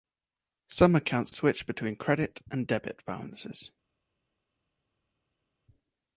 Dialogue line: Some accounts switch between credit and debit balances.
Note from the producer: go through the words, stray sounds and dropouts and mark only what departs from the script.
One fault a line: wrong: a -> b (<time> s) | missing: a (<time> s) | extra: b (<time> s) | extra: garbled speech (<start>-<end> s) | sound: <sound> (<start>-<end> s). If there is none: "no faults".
no faults